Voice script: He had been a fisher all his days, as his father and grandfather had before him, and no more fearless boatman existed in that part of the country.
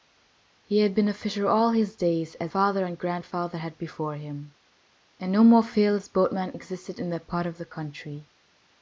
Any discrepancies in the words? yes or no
yes